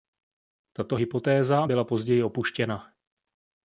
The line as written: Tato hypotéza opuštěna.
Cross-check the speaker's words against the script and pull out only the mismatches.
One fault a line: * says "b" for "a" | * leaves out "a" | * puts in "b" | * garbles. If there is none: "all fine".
* puts in "byla později"